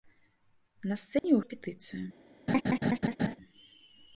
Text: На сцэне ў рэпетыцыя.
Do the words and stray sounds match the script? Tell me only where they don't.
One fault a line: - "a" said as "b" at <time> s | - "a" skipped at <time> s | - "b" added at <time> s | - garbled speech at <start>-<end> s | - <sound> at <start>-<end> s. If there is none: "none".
- dropout at 1.2-1.2 s
- laugh at 2.5-3.4 s